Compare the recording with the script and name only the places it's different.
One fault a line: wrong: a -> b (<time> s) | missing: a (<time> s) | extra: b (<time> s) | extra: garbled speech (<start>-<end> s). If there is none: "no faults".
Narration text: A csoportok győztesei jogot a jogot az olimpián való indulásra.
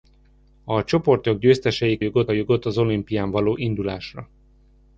no faults